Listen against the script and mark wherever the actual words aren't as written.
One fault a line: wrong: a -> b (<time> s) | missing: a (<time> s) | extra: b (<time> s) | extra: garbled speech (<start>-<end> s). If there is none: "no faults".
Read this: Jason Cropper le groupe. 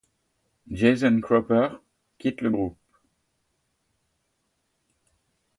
extra: quitte (2.2 s)